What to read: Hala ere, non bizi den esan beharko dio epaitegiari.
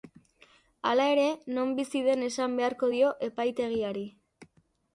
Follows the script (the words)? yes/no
yes